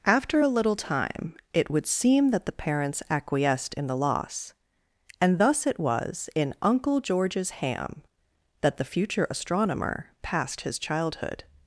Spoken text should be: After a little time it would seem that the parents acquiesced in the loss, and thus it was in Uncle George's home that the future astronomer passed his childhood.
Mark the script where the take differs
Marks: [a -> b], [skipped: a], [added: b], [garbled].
After a little time it would seem that the parents acquiesced in the loss, and thus it was in Uncle George's [home -> ham] that the future astronomer passed his childhood.